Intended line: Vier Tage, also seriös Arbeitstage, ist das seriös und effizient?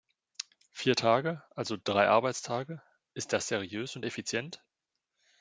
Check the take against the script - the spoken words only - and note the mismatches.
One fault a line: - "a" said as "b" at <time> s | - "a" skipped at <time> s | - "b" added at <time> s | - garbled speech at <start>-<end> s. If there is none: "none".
- "seriös" said as "drei" at 1.8 s